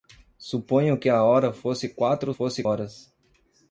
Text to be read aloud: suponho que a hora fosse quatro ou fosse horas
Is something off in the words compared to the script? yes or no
no